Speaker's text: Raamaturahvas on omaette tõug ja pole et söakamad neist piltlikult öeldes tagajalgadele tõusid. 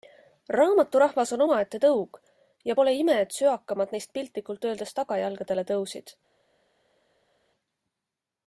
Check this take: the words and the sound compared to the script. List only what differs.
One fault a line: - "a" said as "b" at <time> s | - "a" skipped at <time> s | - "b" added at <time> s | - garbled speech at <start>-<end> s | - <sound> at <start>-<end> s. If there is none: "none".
- "ime" added at 3.0 s